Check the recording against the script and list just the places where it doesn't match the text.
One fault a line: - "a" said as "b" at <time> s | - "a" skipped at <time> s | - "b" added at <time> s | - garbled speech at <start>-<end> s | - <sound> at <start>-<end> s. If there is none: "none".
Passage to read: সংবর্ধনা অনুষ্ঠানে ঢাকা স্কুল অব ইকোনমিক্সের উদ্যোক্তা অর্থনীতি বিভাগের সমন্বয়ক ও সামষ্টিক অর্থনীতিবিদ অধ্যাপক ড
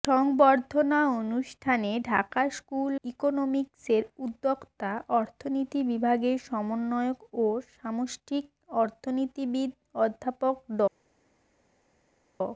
- "অব" skipped at 3.0 s